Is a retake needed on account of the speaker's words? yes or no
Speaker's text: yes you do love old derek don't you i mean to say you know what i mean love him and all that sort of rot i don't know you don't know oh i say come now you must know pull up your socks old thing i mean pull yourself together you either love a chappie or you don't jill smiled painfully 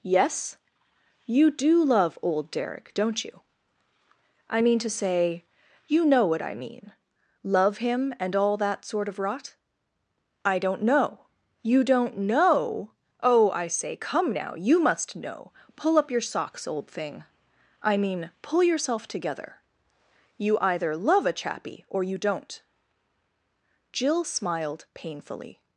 no